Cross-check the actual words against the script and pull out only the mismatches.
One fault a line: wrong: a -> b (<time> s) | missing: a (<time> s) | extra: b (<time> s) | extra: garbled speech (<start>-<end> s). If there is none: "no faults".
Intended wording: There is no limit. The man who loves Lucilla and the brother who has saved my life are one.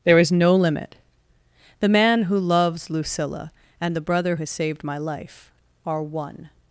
missing: who (4.4 s)